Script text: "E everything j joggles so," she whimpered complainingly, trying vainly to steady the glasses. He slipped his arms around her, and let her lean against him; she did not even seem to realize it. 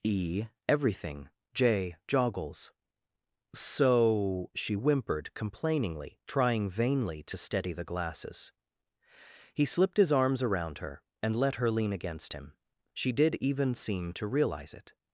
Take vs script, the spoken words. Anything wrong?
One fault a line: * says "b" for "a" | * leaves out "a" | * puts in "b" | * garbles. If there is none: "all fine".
* leaves out "not"